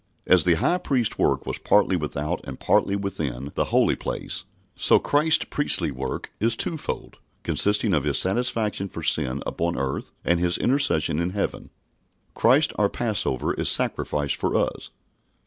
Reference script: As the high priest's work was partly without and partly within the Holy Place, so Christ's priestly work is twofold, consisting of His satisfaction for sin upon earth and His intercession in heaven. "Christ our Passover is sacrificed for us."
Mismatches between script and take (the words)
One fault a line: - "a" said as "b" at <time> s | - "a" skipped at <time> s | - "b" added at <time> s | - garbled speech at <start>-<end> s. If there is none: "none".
none